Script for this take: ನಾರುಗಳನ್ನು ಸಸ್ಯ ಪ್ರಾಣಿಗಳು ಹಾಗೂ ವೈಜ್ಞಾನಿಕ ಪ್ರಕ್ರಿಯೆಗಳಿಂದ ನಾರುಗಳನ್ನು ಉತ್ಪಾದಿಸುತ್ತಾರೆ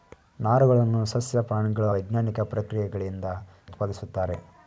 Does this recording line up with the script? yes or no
no